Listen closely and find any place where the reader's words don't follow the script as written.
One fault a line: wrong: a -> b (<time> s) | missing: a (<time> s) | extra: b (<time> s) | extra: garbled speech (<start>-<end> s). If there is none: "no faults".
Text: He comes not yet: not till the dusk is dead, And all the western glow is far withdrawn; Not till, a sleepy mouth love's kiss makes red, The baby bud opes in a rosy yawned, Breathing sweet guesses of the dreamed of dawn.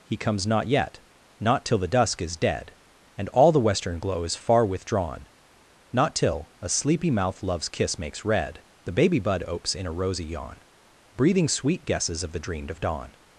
wrong: yawned -> yawn (10.2 s)